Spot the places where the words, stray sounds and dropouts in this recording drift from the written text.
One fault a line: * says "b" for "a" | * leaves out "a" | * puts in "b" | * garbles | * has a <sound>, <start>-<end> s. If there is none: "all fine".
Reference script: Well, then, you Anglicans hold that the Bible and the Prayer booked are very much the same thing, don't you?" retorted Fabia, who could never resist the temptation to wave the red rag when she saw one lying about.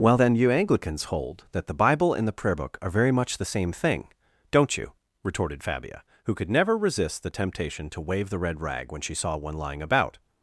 * says "book" for "booked"